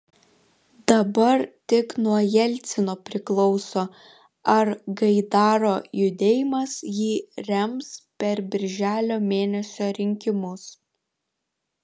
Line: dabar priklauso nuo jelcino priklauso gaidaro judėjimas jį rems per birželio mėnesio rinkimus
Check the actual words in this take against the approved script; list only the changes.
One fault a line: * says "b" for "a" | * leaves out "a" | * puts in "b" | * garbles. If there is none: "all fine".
* says "tik" for "priklauso"
* puts in "ar"